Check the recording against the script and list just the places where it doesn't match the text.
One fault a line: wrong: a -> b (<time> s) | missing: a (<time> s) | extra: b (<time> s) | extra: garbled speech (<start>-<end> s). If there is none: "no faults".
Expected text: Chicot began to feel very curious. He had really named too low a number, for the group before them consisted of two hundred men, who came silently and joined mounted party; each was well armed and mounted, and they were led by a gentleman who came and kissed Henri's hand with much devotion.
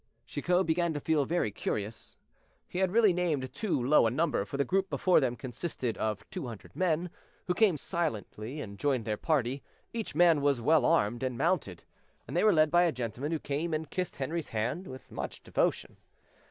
wrong: mounted -> their (9.0 s)
extra: man (10.1 s)